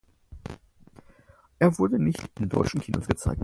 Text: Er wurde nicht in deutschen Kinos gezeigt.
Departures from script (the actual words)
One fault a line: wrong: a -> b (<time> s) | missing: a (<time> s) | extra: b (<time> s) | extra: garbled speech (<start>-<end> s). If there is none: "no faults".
no faults